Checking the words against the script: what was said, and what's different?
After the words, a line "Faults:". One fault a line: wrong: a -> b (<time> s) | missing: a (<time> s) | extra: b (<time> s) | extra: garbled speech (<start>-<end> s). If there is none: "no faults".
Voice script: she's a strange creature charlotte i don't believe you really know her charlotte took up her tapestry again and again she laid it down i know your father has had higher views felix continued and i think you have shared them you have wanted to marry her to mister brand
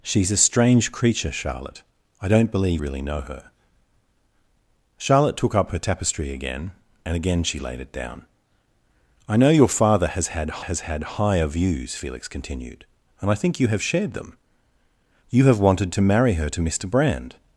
she's a strange creature charlotte i don't believe really know her charlotte took up her tapestry again and again she laid it down i know your father has had has had higher views felix continued and i think you have shared them you have wanted to marry her to mister brand
Faults:
missing: you (2.8 s)
extra: has had (10.6 s)